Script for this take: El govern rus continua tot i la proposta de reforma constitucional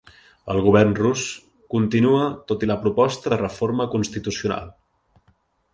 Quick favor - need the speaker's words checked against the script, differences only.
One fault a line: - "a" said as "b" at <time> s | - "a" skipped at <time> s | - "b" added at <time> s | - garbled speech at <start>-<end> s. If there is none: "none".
none